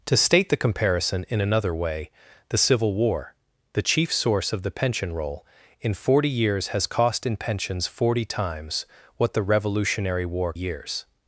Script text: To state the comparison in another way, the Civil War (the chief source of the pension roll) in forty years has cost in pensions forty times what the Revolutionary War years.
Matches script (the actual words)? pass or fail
pass